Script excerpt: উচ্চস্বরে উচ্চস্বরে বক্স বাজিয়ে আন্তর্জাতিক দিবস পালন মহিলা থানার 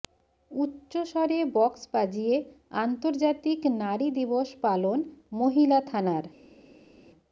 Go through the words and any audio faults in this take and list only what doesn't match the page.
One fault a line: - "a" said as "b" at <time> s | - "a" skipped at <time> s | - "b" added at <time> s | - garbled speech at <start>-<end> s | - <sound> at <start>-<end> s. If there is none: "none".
- "উচ্চস্বরে" skipped at 1.4 s
- "নারী" added at 3.8 s